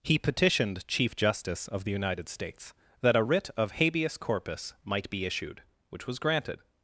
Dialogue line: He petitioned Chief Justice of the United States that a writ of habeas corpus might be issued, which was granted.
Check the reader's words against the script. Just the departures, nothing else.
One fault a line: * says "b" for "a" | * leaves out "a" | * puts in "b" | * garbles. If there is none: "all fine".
all fine